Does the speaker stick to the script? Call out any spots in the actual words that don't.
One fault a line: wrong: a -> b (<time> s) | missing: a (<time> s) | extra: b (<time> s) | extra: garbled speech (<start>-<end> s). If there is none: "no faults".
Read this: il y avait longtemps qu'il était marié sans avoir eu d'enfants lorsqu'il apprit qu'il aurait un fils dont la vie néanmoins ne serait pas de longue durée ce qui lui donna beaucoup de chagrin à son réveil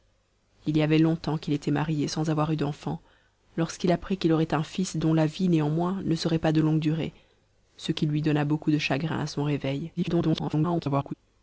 extra: garbled speech (10.0-11.1 s)